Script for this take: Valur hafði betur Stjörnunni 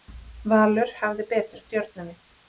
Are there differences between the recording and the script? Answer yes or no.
no